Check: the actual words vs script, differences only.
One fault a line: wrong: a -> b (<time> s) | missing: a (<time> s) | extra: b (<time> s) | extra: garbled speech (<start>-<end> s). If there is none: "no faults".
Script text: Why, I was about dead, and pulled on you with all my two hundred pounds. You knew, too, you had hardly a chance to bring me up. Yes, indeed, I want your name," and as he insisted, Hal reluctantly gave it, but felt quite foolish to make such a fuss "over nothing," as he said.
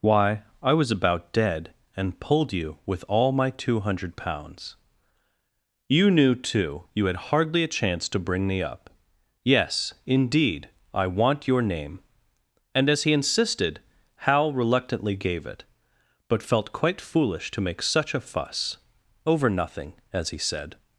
missing: on (2.5 s)